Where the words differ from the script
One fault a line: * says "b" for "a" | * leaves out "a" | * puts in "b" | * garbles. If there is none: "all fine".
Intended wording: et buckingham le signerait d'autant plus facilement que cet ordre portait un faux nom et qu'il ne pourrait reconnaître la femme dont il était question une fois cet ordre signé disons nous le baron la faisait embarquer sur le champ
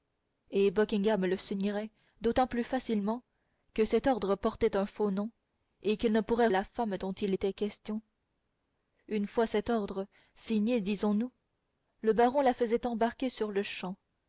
* leaves out "reconnaître"